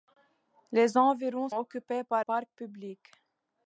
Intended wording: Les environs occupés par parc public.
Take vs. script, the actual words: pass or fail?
pass